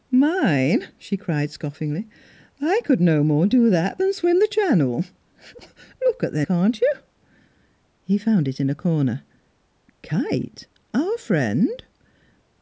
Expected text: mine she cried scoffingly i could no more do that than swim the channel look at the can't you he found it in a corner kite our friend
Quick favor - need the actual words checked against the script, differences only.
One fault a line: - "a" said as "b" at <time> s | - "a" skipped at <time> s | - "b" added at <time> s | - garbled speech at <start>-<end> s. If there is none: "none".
none